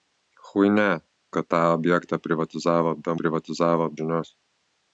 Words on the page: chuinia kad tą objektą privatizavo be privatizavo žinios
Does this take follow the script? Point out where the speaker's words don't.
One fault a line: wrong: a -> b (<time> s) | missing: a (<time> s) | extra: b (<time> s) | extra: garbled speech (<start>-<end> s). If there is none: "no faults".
no faults